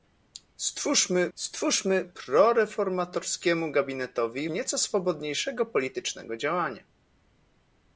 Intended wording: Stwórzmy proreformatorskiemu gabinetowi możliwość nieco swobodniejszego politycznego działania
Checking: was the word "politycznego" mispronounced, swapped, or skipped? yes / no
no